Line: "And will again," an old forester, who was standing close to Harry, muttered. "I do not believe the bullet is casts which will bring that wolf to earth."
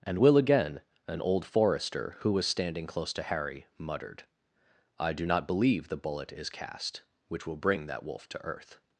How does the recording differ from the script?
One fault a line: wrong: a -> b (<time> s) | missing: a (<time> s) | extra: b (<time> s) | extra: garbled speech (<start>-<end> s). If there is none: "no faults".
wrong: casts -> cast (6.5 s)